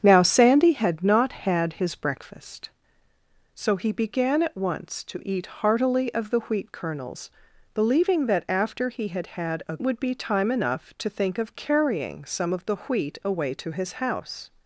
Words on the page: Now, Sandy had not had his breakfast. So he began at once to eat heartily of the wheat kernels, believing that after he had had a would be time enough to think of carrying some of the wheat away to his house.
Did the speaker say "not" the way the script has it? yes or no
yes